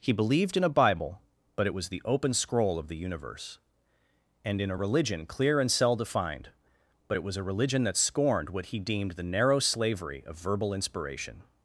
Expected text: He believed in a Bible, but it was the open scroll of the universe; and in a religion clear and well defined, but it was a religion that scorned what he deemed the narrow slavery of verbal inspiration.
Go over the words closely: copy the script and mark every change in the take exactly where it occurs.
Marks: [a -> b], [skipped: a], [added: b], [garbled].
He believed in a Bible, but it was the open scroll of the universe; and in a religion clear and [well -> cell] defined, but it was a religion that scorned what he deemed the narrow slavery of verbal inspiration.